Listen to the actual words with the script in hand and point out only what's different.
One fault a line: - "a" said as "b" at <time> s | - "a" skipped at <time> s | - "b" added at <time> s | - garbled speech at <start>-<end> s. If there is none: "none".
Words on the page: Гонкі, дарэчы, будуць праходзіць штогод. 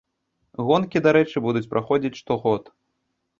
none